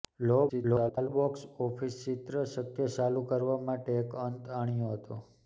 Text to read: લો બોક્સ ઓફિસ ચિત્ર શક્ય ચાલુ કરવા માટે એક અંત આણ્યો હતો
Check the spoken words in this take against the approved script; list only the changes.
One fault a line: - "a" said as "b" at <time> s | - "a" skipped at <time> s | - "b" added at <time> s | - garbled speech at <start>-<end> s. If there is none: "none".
- garbled speech at 0.5-1.1 s